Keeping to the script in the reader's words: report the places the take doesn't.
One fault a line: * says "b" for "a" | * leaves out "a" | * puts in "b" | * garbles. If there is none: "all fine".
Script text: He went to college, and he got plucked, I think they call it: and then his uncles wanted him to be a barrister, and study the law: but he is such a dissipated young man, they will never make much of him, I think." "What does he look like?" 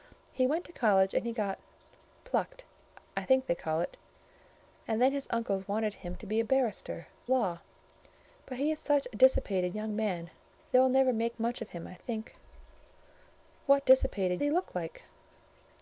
* leaves out "and study the"
* says "dissipated" for "does"